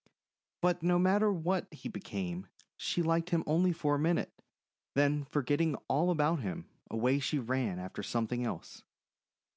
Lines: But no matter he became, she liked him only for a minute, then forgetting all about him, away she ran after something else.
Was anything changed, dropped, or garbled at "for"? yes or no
no